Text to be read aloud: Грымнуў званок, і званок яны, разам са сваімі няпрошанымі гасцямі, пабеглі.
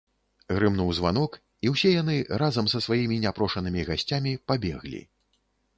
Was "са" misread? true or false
false